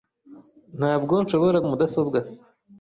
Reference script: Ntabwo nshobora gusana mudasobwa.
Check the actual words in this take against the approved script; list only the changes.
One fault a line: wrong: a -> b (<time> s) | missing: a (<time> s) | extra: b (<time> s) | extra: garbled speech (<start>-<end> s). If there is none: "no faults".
missing: gusana (1.6 s)